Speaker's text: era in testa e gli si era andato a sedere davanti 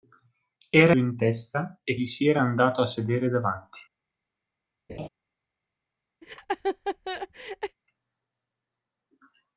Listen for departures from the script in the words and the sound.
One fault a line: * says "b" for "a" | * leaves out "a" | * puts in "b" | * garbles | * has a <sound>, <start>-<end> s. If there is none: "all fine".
* has a laugh, 4.9-5.1 s
* has a laugh, 6.2-7.8 s